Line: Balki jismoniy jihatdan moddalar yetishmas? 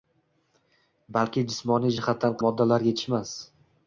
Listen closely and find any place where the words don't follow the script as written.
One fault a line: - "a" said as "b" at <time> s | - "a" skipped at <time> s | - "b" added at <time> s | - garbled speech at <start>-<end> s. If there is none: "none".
none